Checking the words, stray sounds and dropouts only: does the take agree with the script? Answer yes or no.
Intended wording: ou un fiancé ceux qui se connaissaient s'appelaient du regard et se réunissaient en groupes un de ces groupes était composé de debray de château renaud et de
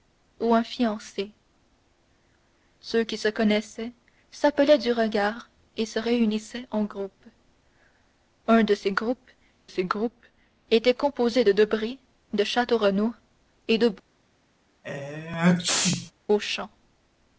no